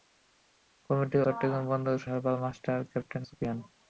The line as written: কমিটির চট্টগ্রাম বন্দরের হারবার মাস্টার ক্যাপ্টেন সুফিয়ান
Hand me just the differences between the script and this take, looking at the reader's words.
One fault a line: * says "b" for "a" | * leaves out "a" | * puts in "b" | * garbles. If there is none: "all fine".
all fine